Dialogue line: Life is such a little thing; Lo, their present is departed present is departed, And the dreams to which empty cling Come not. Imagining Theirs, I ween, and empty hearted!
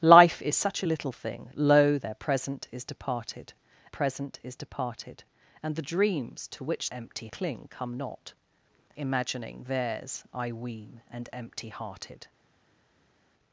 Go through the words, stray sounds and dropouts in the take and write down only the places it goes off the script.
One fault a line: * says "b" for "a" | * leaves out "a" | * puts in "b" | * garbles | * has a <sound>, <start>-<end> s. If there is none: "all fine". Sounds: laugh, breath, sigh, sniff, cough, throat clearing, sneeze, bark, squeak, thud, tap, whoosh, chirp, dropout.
all fine